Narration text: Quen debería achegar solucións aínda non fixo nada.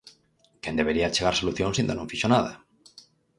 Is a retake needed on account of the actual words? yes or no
no